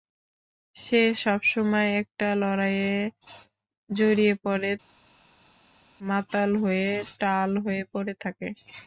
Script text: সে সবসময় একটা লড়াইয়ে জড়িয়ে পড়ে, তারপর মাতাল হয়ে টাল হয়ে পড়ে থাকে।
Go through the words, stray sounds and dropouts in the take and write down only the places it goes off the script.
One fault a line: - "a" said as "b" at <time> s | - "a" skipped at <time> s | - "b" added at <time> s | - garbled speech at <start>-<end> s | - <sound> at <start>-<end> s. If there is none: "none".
- "তারপর" skipped at 4.7 s